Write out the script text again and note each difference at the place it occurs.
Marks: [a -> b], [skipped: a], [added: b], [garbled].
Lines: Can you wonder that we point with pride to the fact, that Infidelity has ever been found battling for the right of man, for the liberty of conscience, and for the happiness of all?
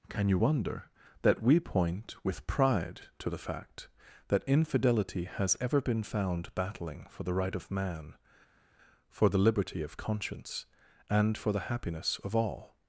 Can you wonder that we point with pride to the fact, that Infidelity has ever been found battling for the right of man, for the liberty of conscience, and for the happiness of all?